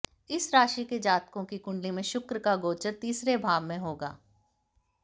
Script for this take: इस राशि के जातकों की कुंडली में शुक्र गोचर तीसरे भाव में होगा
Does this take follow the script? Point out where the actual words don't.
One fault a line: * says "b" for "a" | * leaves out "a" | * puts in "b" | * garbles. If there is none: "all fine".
* puts in "का"